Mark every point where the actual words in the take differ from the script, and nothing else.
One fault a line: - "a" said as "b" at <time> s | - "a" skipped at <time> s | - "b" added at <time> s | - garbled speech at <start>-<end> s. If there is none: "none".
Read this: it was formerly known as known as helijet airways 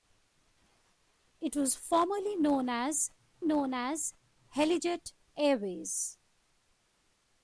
none